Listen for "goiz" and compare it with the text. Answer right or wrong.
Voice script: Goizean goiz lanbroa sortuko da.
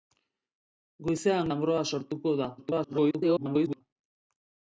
wrong